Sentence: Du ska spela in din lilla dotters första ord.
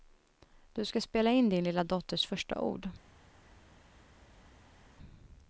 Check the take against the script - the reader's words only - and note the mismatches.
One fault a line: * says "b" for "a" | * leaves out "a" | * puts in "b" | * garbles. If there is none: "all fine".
all fine